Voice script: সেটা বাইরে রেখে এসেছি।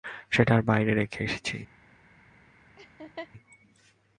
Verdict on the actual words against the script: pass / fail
pass